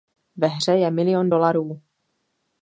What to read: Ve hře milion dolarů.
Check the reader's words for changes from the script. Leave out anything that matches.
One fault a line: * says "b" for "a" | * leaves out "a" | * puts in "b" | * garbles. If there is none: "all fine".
* puts in "je"